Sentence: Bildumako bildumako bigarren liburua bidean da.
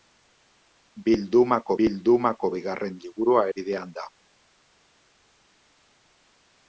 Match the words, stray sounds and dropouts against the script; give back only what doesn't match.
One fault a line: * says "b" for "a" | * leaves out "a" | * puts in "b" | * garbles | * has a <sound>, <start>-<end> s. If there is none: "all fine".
all fine